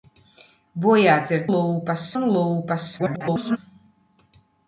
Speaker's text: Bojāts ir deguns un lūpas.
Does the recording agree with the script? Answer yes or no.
no